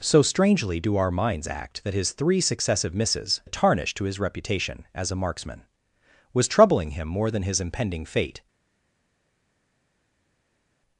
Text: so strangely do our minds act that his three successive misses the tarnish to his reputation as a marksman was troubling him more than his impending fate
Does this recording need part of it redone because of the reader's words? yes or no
no